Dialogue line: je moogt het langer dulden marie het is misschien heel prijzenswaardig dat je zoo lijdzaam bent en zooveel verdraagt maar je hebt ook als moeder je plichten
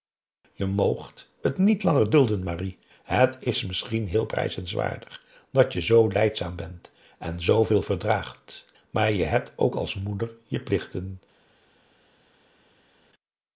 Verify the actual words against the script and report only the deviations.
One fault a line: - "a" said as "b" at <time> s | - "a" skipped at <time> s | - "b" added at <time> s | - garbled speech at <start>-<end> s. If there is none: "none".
- "niet" added at 1.6 s